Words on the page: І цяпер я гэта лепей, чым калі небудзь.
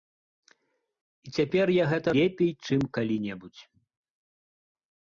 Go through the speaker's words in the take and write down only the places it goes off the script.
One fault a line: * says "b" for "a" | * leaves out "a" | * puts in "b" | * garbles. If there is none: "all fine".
all fine